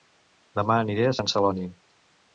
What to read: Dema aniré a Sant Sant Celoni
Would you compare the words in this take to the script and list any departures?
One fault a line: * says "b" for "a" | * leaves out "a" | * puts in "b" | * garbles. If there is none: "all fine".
* leaves out "Sant"